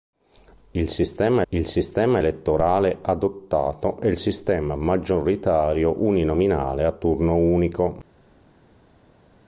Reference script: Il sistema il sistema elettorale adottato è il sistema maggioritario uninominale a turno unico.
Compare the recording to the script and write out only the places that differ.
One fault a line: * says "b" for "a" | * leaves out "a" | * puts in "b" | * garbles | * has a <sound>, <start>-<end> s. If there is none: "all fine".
all fine